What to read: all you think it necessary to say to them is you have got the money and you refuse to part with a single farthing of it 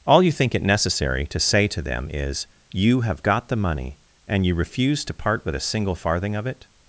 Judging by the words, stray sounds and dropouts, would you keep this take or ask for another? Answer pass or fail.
pass